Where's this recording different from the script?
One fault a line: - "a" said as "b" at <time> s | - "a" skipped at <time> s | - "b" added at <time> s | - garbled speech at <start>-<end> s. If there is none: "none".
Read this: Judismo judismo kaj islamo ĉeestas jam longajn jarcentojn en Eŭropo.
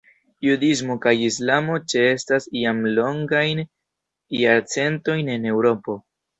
- "judismo" skipped at 0.9 s